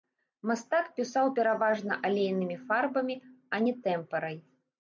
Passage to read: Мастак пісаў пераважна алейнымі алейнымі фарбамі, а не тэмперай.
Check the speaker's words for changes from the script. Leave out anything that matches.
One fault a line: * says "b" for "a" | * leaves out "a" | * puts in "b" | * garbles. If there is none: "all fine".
* leaves out "алейнымі"